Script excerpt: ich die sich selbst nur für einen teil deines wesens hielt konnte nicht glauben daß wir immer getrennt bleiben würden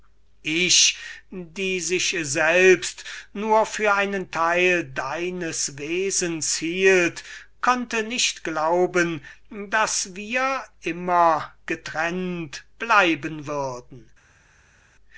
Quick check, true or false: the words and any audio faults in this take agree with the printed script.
true